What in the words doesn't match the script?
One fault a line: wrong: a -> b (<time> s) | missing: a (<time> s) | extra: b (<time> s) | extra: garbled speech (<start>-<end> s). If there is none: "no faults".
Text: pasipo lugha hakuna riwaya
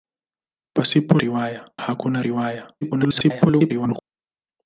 wrong: lugha -> riwaya (1.2 s)
extra: garbled speech (2.8-4.0 s)